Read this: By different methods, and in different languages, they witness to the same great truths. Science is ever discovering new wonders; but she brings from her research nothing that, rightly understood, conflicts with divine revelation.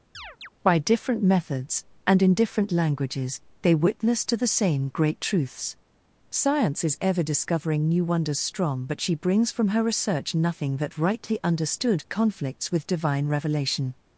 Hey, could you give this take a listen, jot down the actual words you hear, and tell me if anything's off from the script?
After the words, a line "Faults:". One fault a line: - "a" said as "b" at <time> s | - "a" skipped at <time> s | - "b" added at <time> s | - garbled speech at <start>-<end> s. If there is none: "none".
By different methods, and in different languages, they witness to the same great truths. Science is ever discovering new wonders; strong but she brings from her research nothing that, rightly understood, conflicts with divine revelation.
Faults:
- "strong" added at 8.4 s